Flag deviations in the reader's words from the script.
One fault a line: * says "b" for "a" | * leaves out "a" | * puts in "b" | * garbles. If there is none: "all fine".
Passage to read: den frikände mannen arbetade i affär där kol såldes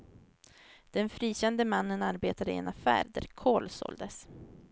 * puts in "en"